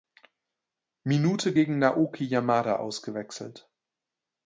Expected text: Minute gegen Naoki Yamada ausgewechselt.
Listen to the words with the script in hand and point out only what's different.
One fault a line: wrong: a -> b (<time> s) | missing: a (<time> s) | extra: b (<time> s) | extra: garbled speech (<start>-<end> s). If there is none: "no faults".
no faults